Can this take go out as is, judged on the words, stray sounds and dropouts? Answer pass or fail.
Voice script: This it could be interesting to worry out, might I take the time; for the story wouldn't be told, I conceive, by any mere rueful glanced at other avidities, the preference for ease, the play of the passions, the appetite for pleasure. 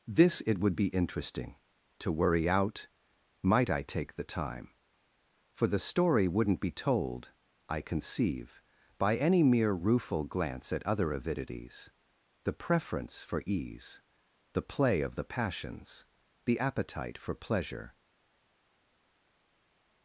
fail